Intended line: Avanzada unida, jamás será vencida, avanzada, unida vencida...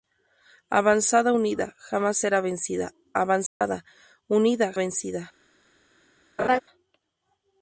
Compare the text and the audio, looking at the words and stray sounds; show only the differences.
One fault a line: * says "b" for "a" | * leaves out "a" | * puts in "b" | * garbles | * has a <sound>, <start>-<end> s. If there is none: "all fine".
* has a dropout, 3.5-3.6 s
* has a laugh, 6.4-6.6 s